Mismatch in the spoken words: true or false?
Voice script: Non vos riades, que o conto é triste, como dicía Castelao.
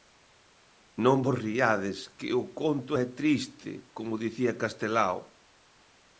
false